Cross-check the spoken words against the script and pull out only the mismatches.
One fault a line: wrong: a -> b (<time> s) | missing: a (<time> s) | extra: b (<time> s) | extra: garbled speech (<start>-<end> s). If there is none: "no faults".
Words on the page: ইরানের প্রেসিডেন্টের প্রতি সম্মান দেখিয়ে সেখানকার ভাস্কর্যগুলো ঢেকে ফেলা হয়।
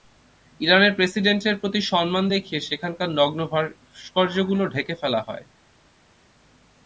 extra: নগ্ন (3.1 s)